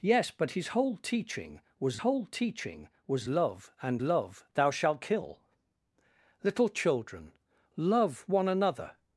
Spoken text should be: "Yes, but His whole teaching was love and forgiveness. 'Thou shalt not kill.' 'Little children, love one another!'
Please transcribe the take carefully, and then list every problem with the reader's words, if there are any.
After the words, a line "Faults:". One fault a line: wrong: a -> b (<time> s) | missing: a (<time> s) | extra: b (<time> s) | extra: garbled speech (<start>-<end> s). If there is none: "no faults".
"Yes, but His whole teaching was whole teaching was love and love. 'Thou shalt kill.' 'Little children, love one another!'
Faults:
extra: whole teaching was (2.0 s)
wrong: forgiveness -> love (4.0 s)
missing: not (5.0 s)